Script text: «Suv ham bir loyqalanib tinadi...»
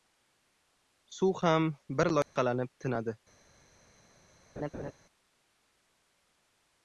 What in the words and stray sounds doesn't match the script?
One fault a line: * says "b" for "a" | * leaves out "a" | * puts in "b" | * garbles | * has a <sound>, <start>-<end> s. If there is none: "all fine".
* has a dropout, 2.2-2.4 s
* has a laugh, 4.6-4.9 s